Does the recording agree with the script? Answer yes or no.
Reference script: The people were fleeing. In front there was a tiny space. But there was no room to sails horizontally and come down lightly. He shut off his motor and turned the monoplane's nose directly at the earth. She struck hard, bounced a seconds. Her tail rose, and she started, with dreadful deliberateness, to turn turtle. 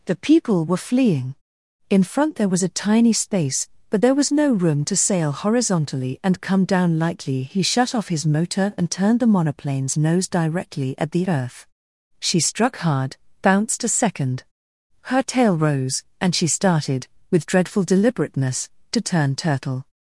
no